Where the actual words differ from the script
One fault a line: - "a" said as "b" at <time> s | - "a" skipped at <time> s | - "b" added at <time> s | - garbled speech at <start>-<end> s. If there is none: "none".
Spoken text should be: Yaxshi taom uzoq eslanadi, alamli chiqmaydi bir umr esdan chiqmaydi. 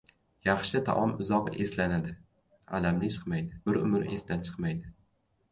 none